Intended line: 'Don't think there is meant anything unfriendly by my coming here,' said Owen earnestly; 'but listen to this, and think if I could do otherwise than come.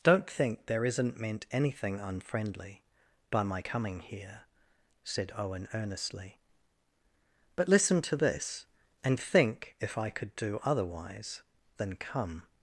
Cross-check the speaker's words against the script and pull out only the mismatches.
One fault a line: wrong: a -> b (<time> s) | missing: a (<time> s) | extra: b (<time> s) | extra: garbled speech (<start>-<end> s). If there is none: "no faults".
wrong: is -> isn't (0.8 s)